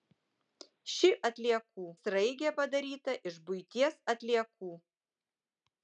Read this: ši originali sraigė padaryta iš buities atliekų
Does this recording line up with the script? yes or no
no